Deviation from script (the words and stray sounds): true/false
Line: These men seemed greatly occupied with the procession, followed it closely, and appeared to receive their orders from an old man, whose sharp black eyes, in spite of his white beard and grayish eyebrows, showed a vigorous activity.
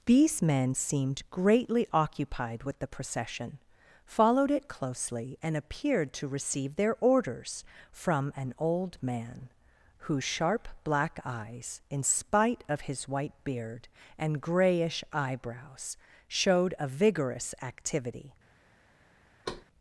true